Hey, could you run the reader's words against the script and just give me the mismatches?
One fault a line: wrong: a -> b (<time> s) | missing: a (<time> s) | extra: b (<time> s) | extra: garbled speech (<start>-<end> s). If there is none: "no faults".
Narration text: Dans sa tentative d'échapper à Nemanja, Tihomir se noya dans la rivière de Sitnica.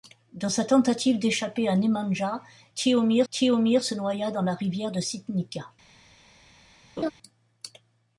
extra: Tihomir (3.3 s)